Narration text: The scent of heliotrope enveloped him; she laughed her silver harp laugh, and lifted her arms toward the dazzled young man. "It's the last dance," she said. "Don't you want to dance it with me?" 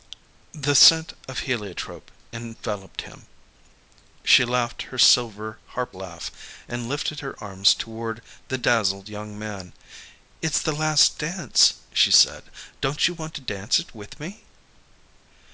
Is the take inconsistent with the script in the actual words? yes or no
no